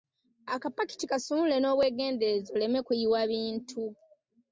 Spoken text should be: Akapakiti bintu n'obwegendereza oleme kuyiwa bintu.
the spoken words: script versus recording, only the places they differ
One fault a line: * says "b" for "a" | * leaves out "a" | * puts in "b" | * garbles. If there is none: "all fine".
* says "kasumulule" for "bintu"